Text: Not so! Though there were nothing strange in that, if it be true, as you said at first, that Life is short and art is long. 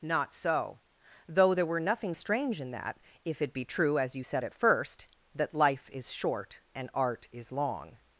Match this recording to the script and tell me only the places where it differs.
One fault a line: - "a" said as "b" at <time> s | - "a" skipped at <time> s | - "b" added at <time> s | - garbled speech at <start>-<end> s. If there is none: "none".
none